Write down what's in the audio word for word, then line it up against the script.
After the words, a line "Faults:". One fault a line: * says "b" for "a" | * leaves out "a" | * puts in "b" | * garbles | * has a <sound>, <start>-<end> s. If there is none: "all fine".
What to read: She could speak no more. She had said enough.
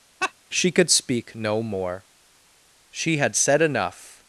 She could speak no more. She had said enough.
Faults:
* has a laugh, 0.2-0.3 s